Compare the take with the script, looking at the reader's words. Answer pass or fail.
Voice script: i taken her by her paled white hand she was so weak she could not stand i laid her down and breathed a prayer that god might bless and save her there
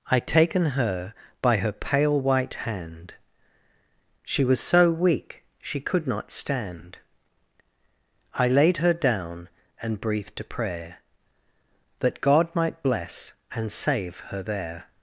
fail